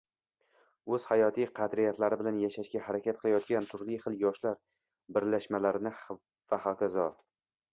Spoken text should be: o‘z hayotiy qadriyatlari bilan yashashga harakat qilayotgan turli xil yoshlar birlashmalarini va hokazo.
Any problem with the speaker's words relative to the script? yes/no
no